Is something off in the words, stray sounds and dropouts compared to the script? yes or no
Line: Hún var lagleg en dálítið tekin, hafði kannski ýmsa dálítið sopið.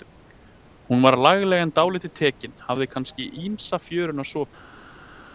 yes